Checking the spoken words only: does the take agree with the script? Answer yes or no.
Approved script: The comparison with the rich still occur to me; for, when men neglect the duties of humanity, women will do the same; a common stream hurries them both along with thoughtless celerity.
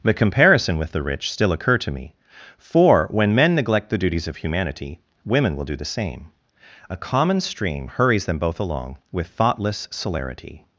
yes